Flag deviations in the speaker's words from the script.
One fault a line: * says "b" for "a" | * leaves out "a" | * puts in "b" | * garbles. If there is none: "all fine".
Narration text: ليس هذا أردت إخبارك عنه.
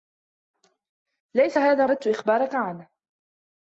all fine